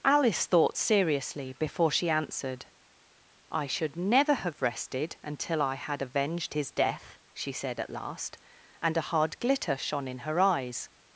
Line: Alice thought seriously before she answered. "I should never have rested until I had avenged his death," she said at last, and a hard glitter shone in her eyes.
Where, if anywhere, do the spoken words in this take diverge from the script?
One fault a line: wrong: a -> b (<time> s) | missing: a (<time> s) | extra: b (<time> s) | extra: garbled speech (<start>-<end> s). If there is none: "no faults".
no faults